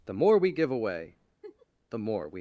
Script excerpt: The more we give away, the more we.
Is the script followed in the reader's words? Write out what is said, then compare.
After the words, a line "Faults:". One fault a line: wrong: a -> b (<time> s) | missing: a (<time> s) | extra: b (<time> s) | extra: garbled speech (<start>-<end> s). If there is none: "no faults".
The more we give away, the more we.
Faults:
no faults